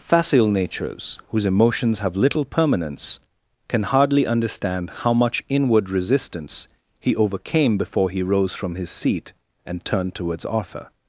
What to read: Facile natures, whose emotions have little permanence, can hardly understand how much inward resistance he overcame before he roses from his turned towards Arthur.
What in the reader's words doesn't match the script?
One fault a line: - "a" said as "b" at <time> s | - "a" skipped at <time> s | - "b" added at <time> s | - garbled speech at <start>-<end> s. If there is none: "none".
- "roses" said as "rose" at 8.2 s
- "seat and" added at 8.9 s